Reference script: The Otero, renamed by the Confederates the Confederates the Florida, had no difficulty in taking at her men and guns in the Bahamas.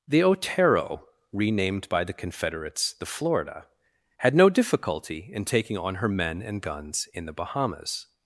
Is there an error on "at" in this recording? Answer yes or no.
yes